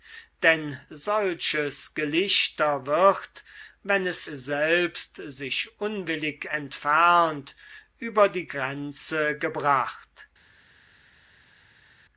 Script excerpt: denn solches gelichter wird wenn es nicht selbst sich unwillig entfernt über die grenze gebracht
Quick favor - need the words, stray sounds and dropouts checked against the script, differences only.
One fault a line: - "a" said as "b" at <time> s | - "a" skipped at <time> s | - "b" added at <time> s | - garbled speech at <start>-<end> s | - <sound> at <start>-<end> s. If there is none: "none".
- "nicht" skipped at 4.3 s